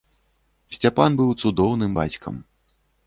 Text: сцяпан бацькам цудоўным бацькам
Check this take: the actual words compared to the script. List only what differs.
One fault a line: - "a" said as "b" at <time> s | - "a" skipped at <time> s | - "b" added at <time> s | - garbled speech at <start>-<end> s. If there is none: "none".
- "бацькам" said as "быў" at 1.2 s